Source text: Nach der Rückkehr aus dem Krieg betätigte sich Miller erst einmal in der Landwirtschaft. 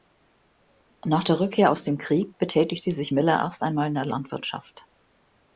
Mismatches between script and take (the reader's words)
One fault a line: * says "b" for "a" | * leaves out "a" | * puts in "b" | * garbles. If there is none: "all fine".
all fine